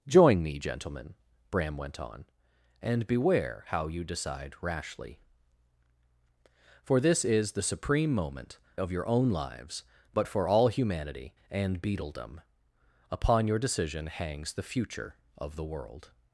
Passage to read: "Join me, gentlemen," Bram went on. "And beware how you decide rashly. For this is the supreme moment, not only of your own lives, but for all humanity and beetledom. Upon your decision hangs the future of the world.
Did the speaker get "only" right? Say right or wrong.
wrong